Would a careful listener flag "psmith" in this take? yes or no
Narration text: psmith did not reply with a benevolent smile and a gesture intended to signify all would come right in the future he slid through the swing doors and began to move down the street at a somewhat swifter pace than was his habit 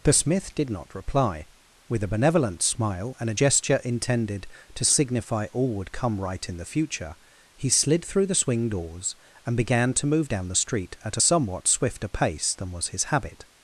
yes